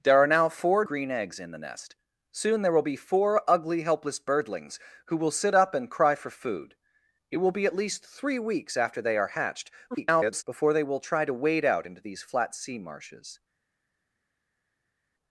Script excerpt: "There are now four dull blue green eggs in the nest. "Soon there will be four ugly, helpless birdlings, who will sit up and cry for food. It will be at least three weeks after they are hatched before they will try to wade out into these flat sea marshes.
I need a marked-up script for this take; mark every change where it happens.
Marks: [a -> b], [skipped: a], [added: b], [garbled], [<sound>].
"There are now four [skipped: dull blue] green eggs in the nest. "Soon there will be four ugly, helpless birdlings, who will sit up and cry for food. It will be at least three weeks after they are hatched [garbled] before they will try to wade out into these flat sea marshes.